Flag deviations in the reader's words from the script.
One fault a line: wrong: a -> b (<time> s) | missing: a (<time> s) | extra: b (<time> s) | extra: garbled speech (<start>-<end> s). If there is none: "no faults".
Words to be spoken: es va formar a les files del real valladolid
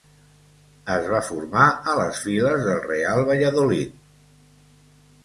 no faults